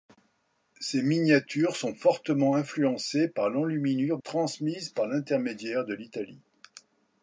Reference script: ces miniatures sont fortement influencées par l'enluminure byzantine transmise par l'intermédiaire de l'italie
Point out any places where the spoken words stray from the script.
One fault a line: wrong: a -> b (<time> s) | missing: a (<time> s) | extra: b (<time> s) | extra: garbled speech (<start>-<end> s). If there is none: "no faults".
missing: byzantine (4.2 s)